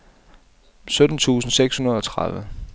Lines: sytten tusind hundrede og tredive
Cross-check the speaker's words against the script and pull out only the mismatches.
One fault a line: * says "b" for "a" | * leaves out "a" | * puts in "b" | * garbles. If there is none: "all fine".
* puts in "seks"